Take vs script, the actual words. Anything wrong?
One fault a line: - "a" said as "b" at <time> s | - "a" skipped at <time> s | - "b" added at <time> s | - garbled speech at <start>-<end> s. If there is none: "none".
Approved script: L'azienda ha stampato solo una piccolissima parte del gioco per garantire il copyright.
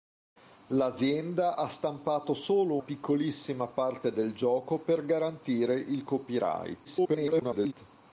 - "una" skipped at 2.8 s
- garbled speech at 6.8-7.7 s